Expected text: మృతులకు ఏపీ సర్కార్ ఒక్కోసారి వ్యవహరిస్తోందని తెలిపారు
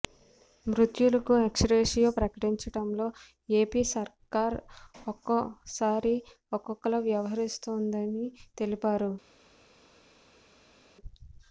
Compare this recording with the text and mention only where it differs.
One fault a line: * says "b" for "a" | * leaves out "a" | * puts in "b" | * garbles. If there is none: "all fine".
* puts in "ఎక్స్గ్రేషియో ప్రకటించడంలో"
* puts in "ఒక్కోలా"